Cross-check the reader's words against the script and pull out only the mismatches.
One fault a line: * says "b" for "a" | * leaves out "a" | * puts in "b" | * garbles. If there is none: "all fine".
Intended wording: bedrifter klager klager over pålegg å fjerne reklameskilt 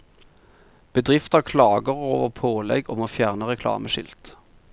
* leaves out "klager"
* puts in "om"